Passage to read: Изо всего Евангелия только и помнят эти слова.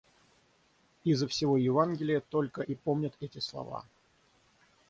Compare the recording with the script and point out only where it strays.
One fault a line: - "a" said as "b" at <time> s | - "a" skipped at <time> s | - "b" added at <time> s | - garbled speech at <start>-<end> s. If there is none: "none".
none